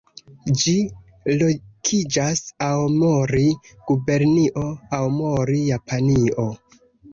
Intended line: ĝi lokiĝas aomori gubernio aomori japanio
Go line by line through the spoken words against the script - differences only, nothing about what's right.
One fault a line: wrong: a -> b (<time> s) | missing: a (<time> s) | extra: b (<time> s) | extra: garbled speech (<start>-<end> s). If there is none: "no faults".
no faults